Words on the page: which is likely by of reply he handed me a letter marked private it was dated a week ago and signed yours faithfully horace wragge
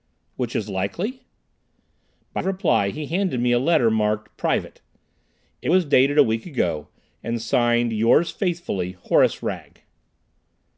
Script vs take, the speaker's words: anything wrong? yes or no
no